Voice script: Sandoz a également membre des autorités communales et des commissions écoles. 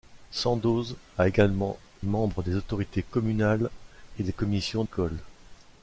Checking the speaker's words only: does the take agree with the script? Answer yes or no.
yes